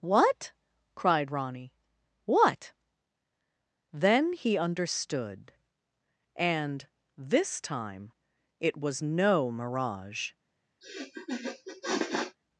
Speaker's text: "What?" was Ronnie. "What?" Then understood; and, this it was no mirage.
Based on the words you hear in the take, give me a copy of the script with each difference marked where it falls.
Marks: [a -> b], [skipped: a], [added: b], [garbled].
"What?" [was -> cried] Ronnie. "What?" Then [added: he] understood; and, this [added: time] it was no mirage.